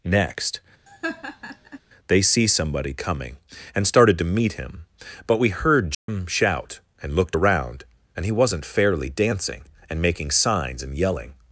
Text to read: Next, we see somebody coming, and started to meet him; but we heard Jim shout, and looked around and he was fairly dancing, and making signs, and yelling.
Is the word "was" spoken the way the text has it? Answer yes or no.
no